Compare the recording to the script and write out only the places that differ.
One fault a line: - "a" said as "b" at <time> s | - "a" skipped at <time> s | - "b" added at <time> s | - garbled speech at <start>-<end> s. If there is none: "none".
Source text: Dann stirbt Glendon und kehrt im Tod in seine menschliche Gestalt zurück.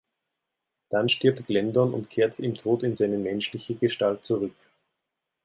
none